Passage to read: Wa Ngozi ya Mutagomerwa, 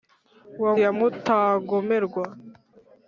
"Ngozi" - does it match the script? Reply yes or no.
no